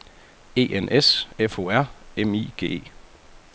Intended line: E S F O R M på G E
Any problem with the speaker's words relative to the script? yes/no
yes